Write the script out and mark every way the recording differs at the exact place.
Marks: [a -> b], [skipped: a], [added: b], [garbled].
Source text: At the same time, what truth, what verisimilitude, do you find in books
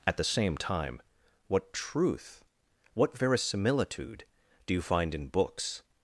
At the same time, what truth, what verisimilitude, do you find in books